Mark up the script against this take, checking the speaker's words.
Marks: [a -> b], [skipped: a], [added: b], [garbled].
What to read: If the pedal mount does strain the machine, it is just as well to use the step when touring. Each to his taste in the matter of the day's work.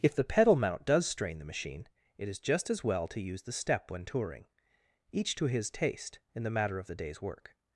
If the pedal mount does strain the machine, it is just as well to use the step when touring. Each to his taste in the matter of the day's work.